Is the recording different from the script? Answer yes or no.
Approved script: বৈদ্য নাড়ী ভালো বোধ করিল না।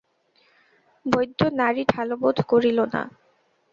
no